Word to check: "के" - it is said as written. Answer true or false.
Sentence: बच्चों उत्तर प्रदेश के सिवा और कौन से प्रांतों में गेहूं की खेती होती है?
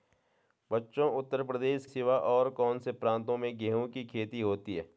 false